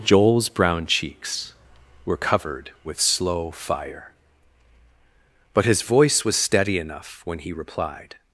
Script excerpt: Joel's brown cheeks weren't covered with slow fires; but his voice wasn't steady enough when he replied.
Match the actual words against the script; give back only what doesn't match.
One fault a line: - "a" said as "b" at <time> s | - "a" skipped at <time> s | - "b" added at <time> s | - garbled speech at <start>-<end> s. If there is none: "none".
- "weren't" said as "were" at 2.0 s
- "fires" said as "fire" at 3.5 s
- "wasn't" said as "was" at 6.2 s